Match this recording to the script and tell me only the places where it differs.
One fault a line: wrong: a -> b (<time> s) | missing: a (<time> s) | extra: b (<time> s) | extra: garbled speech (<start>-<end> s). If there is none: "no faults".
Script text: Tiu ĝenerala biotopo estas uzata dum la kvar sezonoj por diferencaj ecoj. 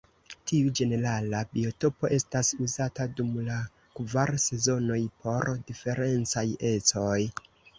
no faults